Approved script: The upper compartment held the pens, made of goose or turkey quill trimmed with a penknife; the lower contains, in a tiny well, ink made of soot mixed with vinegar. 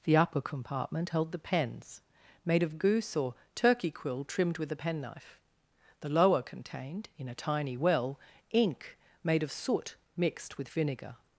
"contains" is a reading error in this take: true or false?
true